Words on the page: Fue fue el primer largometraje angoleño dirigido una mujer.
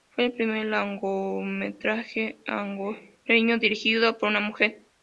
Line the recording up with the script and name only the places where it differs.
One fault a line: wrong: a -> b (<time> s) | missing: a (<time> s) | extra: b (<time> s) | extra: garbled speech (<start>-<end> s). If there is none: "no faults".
missing: fue (0.2 s)
extra: por (4.2 s)